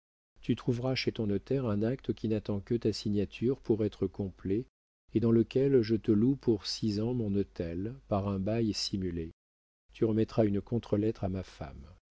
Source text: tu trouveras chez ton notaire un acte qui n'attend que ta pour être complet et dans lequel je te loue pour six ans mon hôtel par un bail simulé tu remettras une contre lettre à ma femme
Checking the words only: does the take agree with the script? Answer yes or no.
no